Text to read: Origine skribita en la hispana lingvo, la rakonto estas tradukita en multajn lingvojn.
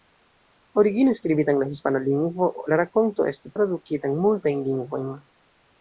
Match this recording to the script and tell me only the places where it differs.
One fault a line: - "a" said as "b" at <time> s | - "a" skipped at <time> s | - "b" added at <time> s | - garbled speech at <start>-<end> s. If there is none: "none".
none